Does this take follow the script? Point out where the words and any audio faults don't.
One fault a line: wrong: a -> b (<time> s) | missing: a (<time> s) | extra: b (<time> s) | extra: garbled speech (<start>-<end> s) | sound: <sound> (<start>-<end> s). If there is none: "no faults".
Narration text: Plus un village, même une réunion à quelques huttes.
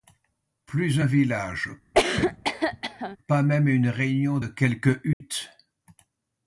sound: cough (1.9-3.2 s)
extra: pas (3.3 s)
wrong: à -> de (4.3 s)
sound: dropout (5.1-5.2 s)